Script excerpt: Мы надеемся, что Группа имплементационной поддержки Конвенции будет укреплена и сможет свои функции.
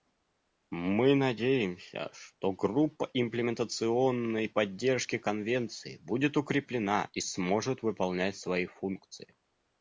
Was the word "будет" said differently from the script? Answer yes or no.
no